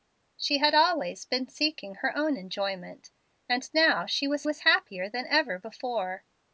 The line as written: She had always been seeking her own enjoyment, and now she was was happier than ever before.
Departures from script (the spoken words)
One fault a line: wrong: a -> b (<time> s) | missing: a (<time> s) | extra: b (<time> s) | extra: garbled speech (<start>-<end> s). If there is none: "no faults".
no faults